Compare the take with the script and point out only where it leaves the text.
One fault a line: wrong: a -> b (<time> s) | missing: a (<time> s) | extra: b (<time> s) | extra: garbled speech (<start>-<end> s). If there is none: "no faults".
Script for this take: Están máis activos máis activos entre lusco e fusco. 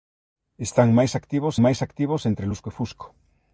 no faults